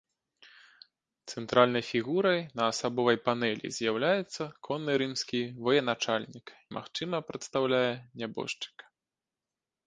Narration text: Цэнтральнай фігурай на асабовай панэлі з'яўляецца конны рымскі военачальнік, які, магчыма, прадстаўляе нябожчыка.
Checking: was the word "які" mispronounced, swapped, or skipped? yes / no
yes